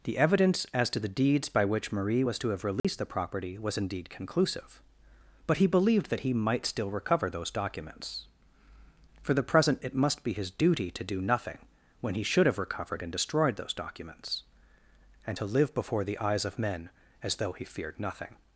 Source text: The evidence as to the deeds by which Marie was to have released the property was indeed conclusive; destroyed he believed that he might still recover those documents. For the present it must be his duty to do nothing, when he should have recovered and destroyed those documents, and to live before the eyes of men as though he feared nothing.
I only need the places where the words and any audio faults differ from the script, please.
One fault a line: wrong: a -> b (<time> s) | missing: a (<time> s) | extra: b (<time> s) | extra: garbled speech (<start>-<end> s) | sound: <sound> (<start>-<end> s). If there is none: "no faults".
sound: dropout (2.8-2.8 s)
wrong: destroyed -> but (5.4 s)